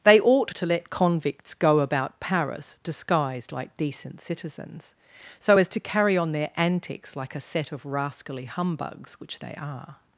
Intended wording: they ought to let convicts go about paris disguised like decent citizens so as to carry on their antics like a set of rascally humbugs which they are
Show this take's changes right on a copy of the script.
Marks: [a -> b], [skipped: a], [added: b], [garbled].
they ought to let convicts go about paris disguised like decent citizens so as to carry on their antics like a set of rascally humbugs which they are